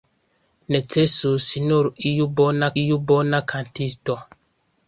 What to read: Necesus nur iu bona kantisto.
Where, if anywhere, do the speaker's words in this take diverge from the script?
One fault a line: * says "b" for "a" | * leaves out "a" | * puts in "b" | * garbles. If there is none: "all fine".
* puts in "iu bona"